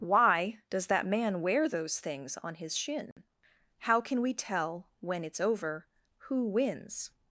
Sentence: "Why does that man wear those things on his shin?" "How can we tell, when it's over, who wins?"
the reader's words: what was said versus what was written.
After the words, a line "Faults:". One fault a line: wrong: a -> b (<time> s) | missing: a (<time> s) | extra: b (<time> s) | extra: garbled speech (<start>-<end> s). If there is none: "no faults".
"Why does that man wear those things on his shin?" "How can we tell, when it's over, who wins?"
Faults:
no faults